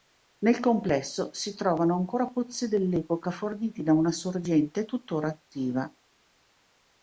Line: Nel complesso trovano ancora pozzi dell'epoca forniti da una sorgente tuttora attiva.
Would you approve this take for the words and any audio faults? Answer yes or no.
no